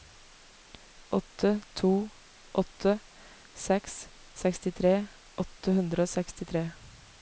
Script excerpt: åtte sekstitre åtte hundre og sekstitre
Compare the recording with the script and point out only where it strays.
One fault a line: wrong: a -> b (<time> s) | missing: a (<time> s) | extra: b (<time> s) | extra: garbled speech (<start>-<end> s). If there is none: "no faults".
extra: to åtte seks (1.7 s)